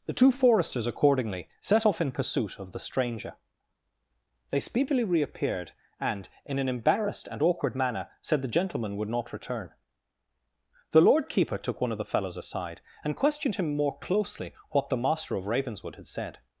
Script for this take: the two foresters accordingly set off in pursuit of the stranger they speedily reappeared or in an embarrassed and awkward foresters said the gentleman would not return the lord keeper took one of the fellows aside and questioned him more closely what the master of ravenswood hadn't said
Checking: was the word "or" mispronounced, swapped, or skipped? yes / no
yes